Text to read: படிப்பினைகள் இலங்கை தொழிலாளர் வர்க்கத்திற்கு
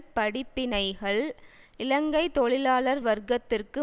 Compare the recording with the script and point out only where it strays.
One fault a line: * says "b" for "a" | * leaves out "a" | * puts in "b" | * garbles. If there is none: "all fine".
all fine